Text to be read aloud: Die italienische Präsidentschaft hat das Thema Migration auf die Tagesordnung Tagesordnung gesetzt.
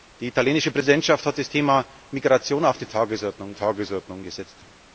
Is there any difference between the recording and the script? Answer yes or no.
no